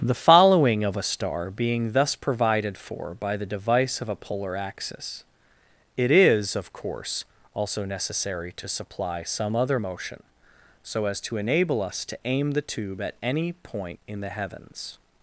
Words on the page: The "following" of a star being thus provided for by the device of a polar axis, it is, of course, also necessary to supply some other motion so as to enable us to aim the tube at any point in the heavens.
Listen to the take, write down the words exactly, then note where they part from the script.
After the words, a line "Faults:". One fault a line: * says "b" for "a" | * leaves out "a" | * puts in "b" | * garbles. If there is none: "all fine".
The "following" of a star being thus provided for by the device of a polar axis, it is, of course, also necessary to supply some other motion so as to enable us to aim the tube at any point in the heavens.
Faults:
all fine